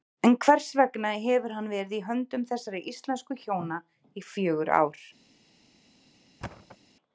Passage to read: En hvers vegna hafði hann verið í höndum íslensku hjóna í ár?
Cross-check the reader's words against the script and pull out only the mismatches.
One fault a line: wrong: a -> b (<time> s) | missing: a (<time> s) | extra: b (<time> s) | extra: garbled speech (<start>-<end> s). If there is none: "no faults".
wrong: hafði -> hefur (1.2 s)
extra: þessara (2.5 s)
extra: fjögur (4.3 s)